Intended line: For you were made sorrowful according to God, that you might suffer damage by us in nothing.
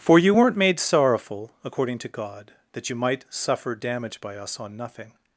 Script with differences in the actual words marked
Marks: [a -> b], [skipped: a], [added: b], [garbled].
For you [were -> weren't] made sorrowful according to God, that you might suffer damage by us [in -> on] nothing.